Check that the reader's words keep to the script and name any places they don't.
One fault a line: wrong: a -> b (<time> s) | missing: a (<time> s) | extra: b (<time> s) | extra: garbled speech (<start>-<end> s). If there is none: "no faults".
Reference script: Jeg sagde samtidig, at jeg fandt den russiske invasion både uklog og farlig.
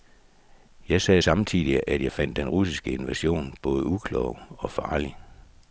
no faults